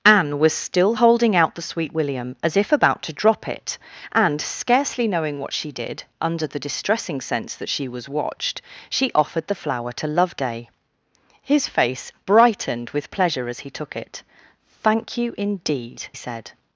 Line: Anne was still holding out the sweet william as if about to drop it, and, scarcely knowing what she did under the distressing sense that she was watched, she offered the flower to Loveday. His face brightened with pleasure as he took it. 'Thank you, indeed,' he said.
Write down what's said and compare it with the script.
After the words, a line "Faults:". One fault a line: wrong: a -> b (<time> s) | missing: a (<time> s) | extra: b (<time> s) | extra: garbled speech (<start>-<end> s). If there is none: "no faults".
Anne was still holding out the sweet william as if about to drop it, and, scarcely knowing what she did under the distressing sense that she was watched, she offered the flower to Loveday. His face brightened with pleasure as he took it. 'Thank you, indeed,' said.
Faults:
missing: he (16.1 s)